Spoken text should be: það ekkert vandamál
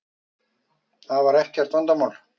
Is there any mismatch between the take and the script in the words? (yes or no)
yes